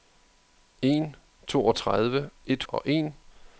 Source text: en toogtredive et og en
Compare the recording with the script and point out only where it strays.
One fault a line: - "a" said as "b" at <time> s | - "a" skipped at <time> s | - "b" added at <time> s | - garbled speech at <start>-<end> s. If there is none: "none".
none